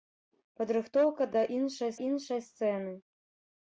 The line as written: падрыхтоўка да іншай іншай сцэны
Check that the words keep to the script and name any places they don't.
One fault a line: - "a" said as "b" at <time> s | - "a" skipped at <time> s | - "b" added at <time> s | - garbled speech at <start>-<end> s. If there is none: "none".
none